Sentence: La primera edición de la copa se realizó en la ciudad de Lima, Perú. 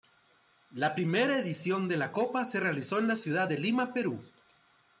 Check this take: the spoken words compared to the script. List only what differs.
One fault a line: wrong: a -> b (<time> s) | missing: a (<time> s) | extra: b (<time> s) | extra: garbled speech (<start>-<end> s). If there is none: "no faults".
no faults